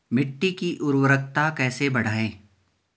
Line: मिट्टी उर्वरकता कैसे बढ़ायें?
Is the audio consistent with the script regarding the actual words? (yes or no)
no